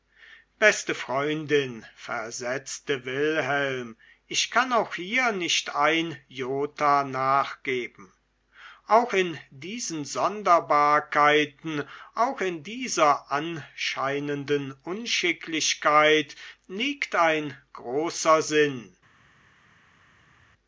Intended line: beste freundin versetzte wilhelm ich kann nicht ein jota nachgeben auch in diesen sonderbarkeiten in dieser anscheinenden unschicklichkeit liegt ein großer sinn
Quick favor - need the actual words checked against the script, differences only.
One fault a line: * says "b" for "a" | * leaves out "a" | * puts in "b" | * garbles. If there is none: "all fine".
* puts in "auch hier"
* puts in "auch"